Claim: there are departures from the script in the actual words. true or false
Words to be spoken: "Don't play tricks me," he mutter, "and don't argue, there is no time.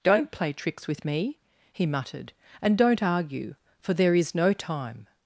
true